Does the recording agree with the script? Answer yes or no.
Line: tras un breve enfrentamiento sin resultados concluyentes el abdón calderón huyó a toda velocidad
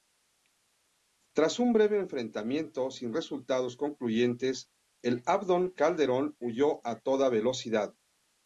yes